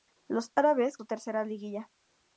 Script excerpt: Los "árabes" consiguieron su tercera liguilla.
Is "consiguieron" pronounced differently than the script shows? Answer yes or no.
yes